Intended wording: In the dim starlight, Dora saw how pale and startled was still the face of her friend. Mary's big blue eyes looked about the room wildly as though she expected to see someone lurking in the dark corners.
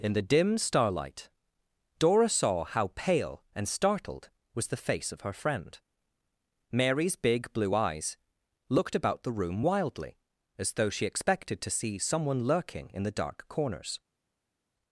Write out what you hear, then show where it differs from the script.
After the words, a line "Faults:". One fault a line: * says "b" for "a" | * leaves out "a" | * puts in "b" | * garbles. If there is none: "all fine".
In the dim starlight, Dora saw how pale and startled was the face of her friend. Mary's big blue eyes looked about the room wildly as though she expected to see someone lurking in the dark corners.
Faults:
* leaves out "still"